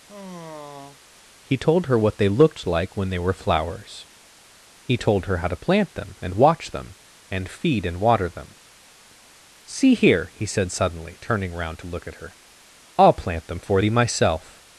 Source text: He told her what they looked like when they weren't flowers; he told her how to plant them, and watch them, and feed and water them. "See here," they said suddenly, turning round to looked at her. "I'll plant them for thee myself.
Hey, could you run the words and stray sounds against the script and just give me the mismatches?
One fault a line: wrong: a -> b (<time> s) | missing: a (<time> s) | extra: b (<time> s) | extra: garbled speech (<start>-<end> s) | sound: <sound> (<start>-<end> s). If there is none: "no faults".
sound: sigh (0.1-1.0 s)
wrong: weren't -> were (3.2 s)
wrong: they -> he (10.3 s)
wrong: looked -> look (11.9 s)